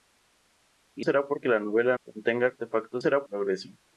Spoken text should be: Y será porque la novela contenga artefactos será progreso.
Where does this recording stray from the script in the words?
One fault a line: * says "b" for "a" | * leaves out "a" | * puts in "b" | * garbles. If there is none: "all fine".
all fine